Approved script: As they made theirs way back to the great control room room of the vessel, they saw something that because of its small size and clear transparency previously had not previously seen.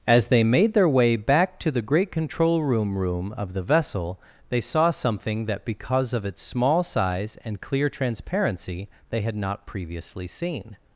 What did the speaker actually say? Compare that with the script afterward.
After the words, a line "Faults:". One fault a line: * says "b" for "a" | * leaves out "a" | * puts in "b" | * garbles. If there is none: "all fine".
As they made their way back to the great control room room of the vessel, they saw something that because of its small size and clear transparency they had not previously seen.
Faults:
* says "their" for "theirs"
* says "they" for "previously"